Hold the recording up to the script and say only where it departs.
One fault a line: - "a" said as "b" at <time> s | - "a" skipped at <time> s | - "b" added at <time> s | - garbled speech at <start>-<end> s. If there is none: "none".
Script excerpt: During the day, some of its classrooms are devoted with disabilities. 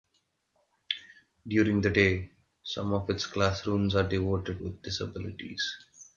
none